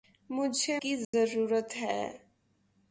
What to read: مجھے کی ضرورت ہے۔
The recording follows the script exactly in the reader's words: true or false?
true